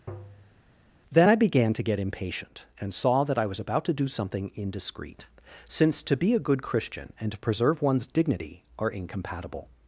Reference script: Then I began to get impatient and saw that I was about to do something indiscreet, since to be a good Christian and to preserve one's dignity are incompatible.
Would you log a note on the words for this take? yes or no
no